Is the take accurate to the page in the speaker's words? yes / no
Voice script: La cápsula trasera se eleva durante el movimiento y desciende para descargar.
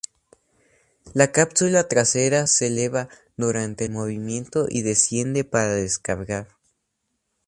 yes